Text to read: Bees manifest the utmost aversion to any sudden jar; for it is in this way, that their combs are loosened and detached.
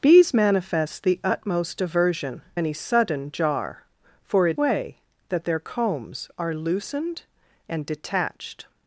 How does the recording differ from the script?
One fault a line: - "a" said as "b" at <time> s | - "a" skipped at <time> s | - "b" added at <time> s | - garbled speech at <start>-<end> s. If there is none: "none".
- "to" skipped at 2.4 s
- "is in this" skipped at 4.6 s